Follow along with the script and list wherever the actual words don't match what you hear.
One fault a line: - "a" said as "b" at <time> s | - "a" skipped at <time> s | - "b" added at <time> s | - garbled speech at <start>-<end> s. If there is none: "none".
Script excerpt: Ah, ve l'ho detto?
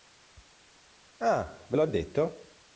none